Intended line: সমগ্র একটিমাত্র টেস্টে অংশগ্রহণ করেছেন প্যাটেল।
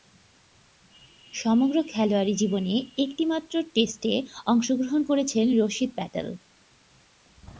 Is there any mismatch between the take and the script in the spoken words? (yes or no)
yes